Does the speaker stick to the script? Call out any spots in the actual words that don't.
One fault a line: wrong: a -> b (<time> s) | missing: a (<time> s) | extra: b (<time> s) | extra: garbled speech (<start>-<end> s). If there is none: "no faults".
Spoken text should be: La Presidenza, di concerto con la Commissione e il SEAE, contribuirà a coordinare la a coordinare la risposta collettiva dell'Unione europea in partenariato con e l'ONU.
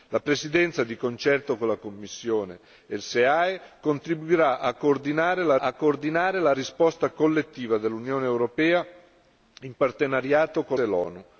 no faults